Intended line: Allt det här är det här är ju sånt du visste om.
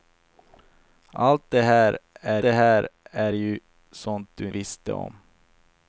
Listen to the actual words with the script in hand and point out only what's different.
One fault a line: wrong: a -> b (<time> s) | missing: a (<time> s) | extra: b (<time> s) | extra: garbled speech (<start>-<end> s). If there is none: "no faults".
no faults